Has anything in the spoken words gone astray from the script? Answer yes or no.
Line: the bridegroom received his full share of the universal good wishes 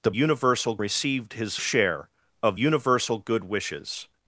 yes